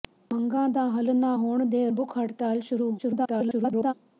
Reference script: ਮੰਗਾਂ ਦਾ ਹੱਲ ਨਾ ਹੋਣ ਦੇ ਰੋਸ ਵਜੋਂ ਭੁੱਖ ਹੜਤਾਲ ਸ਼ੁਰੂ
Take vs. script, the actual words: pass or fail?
fail